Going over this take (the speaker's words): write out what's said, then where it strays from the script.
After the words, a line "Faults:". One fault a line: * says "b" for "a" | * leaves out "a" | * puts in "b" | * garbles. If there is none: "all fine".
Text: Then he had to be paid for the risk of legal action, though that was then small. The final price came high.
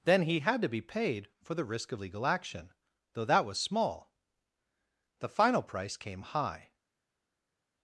Then he had to be paid for the risk of legal action, though that was small. The final price came high.
Faults:
* leaves out "then"